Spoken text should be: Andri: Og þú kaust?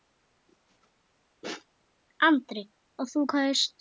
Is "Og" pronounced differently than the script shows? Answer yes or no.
no